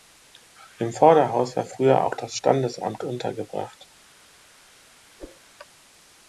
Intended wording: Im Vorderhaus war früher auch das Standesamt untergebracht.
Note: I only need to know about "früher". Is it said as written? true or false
true